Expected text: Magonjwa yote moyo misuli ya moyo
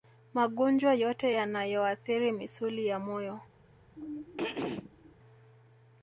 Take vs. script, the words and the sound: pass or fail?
fail